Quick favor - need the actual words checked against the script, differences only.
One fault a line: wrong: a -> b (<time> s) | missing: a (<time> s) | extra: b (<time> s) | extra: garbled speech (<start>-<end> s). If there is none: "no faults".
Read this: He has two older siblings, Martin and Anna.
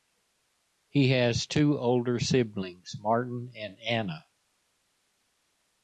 no faults